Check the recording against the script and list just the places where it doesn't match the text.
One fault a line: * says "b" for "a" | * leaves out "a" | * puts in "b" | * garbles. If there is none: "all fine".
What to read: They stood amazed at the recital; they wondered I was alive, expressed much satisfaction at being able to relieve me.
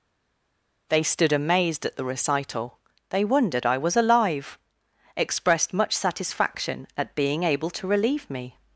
all fine